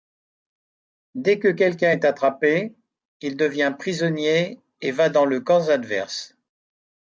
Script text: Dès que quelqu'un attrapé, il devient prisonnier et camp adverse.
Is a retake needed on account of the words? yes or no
yes